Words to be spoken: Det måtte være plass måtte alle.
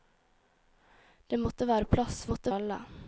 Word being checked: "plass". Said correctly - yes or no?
yes